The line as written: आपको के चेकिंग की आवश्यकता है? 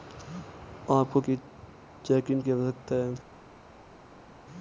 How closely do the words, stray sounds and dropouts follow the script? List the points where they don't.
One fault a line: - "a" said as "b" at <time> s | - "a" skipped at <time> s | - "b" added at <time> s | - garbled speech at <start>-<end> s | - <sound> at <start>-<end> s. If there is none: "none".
none